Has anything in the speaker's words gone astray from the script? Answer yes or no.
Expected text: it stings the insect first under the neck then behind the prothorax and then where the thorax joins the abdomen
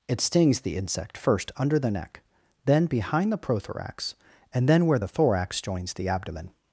no